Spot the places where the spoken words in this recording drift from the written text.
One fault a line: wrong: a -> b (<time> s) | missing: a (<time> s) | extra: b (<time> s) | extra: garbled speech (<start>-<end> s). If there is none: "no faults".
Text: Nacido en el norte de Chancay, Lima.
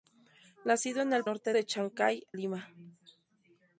no faults